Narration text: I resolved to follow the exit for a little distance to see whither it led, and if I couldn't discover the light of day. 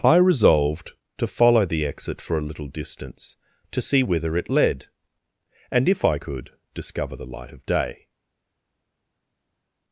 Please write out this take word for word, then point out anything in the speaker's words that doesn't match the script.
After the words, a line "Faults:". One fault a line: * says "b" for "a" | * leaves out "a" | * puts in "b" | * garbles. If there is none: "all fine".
I resolved to follow the exit for a little distance to see whither it led, and if I could discover the light of day.
Faults:
* says "could" for "couldn't"